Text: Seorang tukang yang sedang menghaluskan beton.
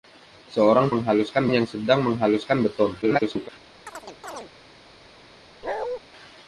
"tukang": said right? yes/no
no